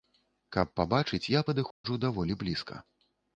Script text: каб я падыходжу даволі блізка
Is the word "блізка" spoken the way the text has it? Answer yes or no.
yes